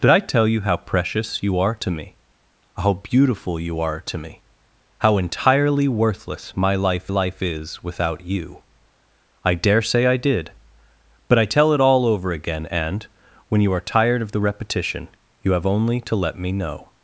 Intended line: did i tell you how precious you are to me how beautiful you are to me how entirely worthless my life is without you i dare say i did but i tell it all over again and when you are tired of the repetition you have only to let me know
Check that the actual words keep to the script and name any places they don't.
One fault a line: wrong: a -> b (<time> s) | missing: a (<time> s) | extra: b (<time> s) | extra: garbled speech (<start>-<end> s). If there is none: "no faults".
extra: life (7.1 s)